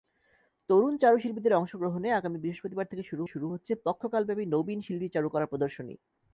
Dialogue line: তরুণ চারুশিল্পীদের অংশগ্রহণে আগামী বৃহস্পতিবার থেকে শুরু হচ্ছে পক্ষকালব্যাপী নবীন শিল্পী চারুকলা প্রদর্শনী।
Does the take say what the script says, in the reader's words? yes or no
no